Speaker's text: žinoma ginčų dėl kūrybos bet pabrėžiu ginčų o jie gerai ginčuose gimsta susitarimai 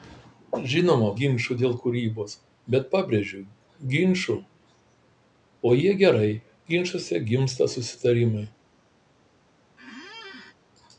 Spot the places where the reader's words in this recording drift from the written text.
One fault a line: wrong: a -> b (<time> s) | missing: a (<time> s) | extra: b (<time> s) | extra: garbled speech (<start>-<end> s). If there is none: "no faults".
no faults